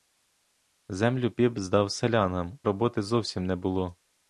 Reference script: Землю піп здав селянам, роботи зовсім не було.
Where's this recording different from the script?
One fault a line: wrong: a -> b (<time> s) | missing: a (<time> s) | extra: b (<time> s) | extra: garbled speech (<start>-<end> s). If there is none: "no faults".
no faults